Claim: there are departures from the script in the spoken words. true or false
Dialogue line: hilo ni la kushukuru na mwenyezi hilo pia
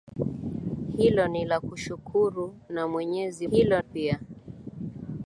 false